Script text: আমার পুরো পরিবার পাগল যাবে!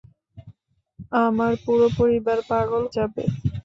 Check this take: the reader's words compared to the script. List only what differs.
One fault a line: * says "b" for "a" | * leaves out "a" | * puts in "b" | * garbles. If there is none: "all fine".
all fine